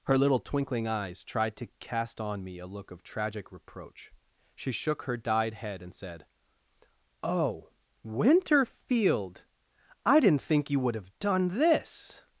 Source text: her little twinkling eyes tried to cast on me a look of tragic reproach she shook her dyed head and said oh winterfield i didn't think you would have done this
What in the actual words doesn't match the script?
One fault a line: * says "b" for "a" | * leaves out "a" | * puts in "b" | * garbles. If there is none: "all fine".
all fine